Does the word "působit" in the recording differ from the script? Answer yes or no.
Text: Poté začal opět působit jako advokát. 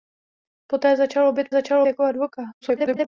yes